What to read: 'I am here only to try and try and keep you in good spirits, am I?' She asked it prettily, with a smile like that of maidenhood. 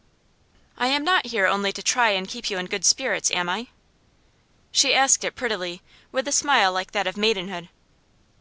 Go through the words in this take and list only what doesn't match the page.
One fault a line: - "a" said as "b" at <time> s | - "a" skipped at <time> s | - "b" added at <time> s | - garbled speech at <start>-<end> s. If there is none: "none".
- "not" added at 1.0 s
- "try and" skipped at 2.3 s